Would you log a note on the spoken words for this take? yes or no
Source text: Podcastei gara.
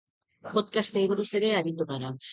yes